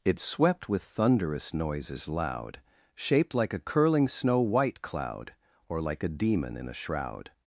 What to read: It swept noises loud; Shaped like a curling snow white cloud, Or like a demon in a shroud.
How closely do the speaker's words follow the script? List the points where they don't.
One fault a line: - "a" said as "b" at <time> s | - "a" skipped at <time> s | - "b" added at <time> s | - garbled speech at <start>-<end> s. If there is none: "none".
- "with thunderous" added at 0.7 s